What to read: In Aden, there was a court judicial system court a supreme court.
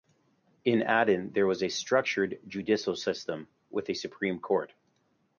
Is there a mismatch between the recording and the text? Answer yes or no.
yes